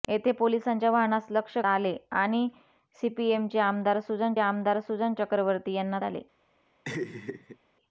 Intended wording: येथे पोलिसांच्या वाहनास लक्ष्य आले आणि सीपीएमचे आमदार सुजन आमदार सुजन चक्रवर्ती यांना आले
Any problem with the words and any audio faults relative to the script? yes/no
yes